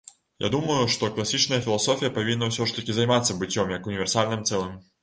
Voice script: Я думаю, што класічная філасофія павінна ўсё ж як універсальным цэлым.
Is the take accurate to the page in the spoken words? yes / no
no